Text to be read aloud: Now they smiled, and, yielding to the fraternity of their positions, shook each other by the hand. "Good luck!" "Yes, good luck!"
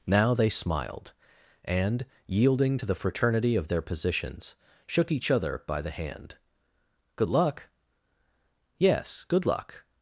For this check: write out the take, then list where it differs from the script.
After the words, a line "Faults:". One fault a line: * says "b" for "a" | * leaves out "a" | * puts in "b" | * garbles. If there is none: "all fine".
Now they smiled, and, yielding to the fraternity of their positions, shook each other by the hand. "Good luck!" "Yes, good luck!"
Faults:
all fine